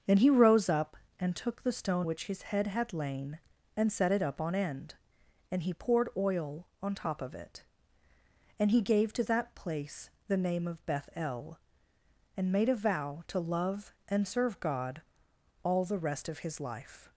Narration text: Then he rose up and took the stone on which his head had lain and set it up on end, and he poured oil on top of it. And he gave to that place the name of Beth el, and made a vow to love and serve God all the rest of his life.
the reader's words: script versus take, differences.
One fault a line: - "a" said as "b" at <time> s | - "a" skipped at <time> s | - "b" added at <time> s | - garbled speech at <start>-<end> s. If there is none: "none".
- "on" skipped at 2.1 s